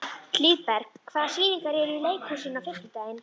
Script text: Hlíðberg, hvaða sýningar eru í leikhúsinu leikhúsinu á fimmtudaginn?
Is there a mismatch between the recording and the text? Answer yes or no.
yes